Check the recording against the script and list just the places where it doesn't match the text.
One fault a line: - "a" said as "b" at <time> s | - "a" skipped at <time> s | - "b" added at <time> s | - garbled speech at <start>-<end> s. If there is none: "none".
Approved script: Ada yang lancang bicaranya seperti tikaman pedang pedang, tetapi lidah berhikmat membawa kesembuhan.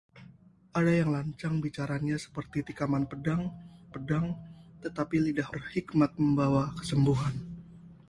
none